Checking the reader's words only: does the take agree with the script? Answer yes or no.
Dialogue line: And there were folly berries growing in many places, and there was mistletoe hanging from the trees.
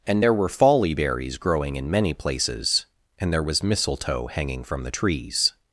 yes